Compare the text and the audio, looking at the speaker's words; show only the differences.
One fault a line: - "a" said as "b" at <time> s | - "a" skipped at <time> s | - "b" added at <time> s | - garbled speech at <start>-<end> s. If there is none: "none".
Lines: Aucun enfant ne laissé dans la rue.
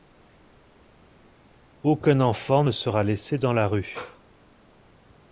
- "sera" added at 2.7 s